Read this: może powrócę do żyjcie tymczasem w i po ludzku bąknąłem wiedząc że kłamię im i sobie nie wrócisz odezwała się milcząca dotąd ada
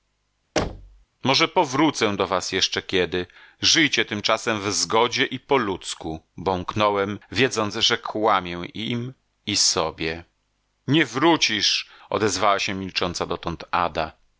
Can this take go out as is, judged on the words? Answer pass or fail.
fail